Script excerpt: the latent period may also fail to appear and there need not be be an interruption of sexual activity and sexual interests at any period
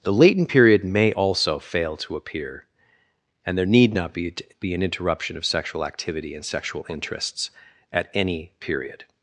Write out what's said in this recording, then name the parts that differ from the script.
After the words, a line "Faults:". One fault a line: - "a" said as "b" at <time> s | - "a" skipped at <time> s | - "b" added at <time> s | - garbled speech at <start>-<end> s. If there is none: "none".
the latent period may also fail to appear and there need not be be an interruption of sexual activity and sexual interests at any period
Faults:
none